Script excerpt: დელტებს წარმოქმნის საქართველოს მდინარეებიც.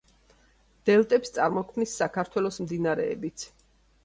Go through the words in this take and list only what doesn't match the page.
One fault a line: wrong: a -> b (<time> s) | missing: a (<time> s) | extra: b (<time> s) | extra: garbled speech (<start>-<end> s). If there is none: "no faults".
no faults